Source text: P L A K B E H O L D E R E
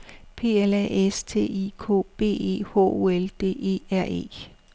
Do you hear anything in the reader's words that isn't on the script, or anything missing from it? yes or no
yes